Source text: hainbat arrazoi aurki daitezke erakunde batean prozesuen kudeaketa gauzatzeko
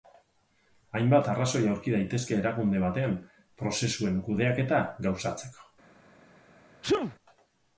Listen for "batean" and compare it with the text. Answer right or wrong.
right